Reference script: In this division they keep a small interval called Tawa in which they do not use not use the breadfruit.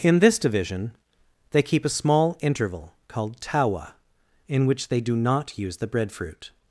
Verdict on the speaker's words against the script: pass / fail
fail